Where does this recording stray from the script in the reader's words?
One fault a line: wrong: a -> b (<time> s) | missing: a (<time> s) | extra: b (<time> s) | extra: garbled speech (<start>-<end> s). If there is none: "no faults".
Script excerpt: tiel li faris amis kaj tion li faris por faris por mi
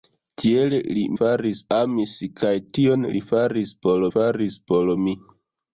no faults